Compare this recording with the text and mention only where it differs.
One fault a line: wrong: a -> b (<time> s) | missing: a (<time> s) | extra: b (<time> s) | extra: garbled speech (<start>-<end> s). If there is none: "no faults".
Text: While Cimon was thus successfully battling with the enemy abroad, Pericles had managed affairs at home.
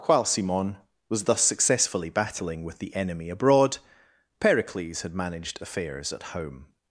no faults